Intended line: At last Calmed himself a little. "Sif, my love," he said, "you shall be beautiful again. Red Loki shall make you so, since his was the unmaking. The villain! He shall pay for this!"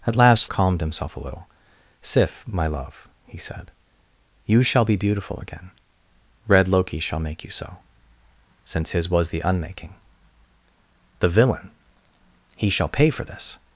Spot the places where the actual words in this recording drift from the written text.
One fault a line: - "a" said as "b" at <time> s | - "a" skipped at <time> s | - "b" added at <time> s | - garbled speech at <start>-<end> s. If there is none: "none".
none